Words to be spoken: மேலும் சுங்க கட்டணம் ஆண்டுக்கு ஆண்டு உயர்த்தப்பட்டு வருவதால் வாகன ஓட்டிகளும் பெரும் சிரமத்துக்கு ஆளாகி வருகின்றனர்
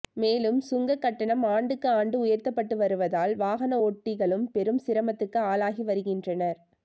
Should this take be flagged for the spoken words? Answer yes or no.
no